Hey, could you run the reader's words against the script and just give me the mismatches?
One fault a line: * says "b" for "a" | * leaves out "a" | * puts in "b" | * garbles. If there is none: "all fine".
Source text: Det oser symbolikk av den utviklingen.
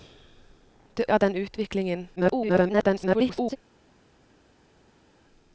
* leaves out "oser symbolikk"
* garbles